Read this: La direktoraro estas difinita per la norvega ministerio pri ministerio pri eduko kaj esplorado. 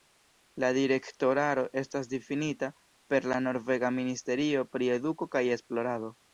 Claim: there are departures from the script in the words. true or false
true